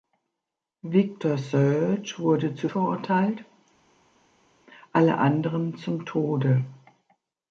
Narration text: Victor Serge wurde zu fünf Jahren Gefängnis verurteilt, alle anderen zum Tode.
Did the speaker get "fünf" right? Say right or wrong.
wrong